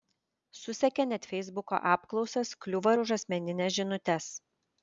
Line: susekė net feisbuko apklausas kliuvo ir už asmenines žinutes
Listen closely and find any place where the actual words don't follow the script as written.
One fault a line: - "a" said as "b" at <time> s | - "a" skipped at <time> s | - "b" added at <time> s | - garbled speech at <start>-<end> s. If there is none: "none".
none